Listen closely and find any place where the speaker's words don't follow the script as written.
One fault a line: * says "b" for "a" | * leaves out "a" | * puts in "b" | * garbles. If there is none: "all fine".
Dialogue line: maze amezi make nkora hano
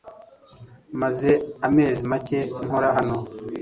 all fine